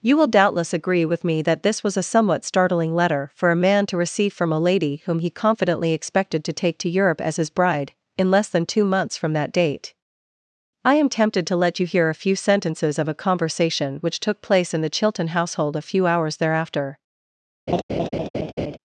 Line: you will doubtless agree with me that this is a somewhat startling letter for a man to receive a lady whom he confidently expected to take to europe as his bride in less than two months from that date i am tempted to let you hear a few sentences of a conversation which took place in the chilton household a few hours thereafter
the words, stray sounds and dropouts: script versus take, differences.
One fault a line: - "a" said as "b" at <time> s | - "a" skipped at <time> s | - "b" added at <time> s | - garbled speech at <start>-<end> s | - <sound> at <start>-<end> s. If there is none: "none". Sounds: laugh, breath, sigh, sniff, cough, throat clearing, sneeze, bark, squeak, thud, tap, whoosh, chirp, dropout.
- "is" said as "was" at 1.8 s
- "from" added at 4.3 s
- laugh at 17.7-18.8 s